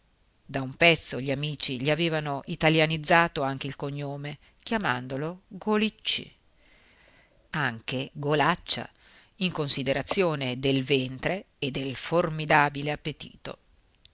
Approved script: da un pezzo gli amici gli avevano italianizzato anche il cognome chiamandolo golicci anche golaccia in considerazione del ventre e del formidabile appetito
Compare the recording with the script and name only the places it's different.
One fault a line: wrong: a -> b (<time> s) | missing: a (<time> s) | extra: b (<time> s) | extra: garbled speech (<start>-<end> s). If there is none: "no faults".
no faults